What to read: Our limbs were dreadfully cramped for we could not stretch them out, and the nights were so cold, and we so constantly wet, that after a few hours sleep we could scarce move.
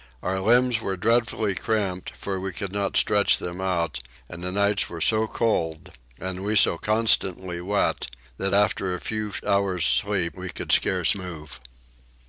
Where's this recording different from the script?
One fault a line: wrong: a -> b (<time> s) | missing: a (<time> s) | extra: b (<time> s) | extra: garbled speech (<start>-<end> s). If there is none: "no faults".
no faults